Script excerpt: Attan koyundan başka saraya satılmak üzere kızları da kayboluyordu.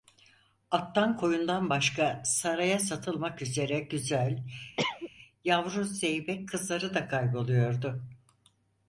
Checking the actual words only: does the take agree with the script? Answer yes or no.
no